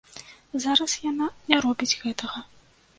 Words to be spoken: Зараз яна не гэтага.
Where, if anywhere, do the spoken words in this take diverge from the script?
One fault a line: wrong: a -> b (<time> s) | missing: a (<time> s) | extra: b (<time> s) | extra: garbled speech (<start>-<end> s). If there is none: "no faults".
extra: робіць (1.7 s)